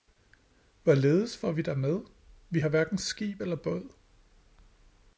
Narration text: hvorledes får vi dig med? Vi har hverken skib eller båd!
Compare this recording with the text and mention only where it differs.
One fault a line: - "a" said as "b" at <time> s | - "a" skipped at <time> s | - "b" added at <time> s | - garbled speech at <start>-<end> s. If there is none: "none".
none